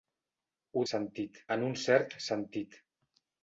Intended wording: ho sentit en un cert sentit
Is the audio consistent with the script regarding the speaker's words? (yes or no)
yes